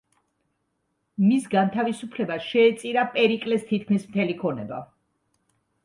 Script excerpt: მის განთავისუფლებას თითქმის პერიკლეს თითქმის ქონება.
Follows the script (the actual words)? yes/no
no